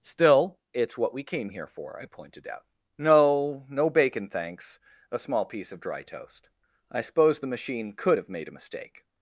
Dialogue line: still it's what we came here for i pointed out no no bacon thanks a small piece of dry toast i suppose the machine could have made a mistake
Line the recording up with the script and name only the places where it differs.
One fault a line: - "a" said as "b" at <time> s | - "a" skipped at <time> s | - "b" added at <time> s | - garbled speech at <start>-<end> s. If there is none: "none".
none